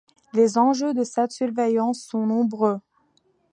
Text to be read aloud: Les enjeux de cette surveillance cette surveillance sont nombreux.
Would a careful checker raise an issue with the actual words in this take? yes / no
yes